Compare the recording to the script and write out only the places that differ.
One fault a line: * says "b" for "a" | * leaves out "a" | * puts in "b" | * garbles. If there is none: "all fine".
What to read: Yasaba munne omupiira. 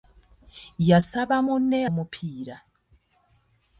all fine